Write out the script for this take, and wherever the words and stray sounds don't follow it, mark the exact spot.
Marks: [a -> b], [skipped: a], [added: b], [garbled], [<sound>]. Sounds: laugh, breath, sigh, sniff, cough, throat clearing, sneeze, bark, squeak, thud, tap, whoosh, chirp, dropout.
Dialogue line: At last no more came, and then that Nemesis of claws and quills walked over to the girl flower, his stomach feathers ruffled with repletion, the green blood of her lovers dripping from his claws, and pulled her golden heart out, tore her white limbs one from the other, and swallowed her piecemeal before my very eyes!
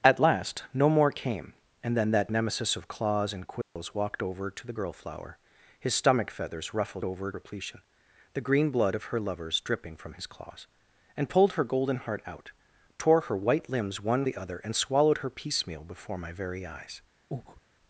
At last no more came, and then that Nemesis of claws and quills [dropout] walked over to the girl flower, his stomach feathers ruffled [with -> over] repletion, the green blood of her lovers dripping from his claws, and pulled her golden heart out, tore her white limbs one [skipped: from] the other, and swallowed her piecemeal before my very eyes! [breath]